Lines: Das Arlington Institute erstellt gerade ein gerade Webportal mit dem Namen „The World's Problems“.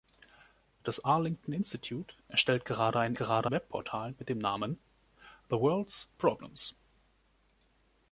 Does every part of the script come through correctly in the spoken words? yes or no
yes